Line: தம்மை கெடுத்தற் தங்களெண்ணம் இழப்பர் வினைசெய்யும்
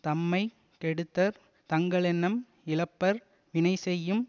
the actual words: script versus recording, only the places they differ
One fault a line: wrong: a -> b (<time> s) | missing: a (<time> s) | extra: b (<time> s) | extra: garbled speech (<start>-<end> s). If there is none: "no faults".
no faults